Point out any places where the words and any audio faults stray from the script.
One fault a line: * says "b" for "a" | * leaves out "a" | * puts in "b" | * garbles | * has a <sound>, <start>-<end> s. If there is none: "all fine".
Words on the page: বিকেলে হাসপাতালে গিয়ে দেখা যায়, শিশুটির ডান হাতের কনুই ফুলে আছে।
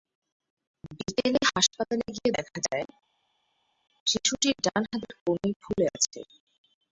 all fine